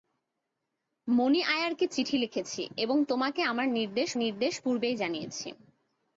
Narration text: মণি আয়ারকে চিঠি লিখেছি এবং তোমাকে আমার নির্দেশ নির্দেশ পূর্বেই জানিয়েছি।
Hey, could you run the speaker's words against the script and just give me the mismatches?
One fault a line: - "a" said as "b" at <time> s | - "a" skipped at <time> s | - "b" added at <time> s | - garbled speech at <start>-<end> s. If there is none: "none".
none